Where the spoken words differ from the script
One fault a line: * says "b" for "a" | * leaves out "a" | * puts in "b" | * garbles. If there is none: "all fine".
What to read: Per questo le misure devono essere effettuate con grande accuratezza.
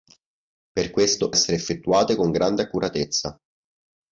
* leaves out "le misure devono"